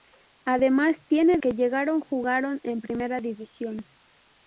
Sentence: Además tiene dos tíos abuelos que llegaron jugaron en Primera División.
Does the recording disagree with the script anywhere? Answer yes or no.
yes